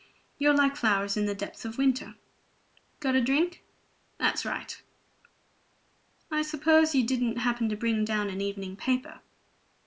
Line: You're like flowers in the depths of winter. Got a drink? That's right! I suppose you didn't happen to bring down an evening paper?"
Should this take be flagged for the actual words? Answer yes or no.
no